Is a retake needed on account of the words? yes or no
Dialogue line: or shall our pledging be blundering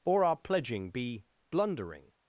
yes